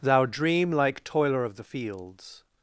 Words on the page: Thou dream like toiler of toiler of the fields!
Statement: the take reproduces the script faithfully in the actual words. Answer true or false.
false